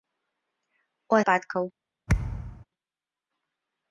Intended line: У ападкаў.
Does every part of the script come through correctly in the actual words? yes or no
yes